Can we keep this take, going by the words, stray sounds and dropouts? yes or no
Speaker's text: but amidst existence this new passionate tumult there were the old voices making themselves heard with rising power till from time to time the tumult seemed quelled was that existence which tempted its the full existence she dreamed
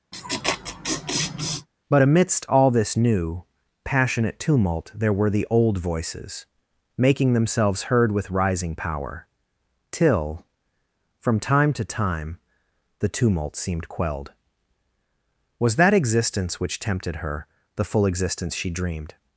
no